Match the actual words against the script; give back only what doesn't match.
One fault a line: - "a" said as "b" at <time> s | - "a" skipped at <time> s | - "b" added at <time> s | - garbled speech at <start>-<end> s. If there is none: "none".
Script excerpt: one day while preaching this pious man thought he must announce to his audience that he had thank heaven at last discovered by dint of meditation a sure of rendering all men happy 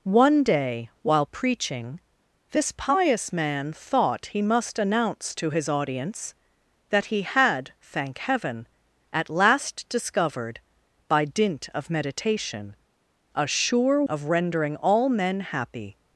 none